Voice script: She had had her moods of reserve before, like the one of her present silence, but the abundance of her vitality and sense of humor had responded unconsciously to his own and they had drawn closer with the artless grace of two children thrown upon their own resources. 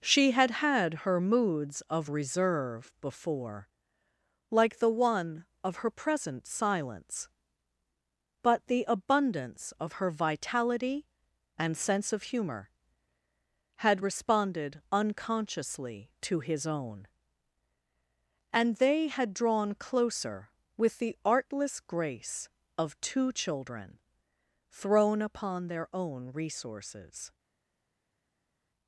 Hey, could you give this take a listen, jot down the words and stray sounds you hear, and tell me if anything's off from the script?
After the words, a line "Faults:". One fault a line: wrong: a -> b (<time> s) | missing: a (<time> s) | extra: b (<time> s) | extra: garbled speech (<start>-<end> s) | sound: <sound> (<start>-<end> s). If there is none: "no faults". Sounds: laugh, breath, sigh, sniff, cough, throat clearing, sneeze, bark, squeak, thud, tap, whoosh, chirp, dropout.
She had had her moods of reserve before, like the one of her present silence, but the abundance of her vitality and sense of humor had responded unconsciously to his own and they had drawn closer with the artless grace of two children thrown upon their own resources.
Faults:
no faults